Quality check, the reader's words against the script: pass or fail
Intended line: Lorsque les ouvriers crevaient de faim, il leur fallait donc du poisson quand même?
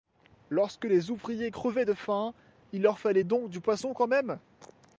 pass